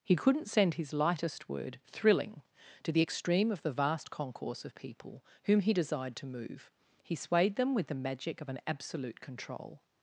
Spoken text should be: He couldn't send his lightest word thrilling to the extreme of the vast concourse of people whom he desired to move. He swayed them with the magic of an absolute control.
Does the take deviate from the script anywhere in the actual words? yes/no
no